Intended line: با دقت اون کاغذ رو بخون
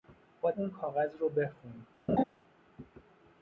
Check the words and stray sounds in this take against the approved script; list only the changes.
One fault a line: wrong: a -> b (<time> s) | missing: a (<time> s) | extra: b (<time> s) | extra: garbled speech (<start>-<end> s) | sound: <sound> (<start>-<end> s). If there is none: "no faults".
missing: دقت (0.5 s)
sound: laugh (2.1-2.2 s)